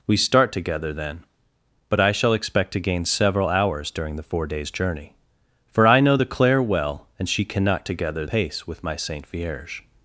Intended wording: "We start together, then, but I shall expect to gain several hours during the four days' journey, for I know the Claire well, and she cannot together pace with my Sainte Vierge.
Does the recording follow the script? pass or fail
pass